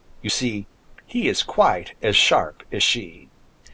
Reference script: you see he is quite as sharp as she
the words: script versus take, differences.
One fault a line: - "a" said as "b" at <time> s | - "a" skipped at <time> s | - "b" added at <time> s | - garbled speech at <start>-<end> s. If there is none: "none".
none